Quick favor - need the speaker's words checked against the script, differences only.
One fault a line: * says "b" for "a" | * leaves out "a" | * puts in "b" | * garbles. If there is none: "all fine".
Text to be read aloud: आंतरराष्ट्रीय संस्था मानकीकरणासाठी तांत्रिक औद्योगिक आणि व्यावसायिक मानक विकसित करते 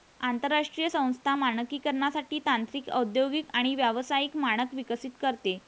all fine